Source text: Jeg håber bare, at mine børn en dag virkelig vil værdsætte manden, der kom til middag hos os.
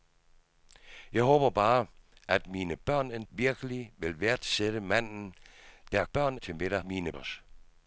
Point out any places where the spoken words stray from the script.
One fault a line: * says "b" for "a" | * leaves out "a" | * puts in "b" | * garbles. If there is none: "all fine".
* leaves out "dag"
* says "børn" for "kom"
* says "mine" for "hos"